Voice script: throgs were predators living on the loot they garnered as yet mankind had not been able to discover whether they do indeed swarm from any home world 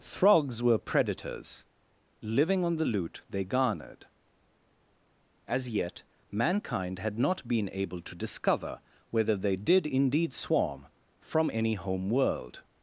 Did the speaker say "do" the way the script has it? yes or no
no